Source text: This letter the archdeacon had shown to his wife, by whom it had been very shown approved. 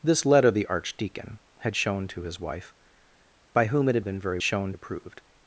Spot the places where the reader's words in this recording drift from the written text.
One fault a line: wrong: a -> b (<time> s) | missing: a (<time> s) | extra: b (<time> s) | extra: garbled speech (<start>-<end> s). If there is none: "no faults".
no faults